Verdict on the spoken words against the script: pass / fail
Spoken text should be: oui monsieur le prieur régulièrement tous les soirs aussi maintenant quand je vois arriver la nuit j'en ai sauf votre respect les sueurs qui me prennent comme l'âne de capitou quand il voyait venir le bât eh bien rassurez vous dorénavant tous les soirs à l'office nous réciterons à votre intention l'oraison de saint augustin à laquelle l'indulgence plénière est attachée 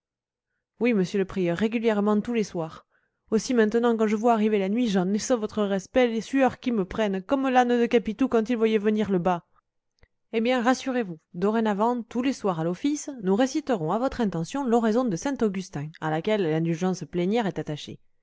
pass